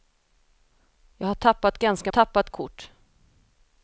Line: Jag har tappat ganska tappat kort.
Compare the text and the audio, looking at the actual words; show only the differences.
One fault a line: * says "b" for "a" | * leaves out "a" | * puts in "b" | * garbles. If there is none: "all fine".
all fine